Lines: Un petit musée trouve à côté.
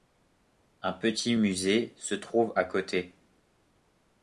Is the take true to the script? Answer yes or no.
no